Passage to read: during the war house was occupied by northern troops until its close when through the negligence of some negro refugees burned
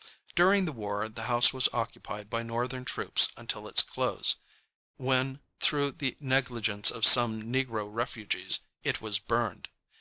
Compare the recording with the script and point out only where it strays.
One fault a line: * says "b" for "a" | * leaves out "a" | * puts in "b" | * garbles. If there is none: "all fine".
* puts in "the"
* puts in "it was"